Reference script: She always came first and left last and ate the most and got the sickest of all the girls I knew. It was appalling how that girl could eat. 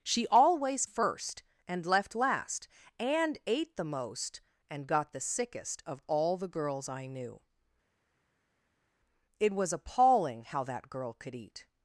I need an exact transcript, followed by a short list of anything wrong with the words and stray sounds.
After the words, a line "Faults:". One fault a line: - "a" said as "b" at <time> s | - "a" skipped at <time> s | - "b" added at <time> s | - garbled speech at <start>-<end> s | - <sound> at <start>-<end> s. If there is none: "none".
She always first and left last and ate the most and got the sickest of all the girls I knew. It was appalling how that girl could eat.
Faults:
- "came" skipped at 0.8 s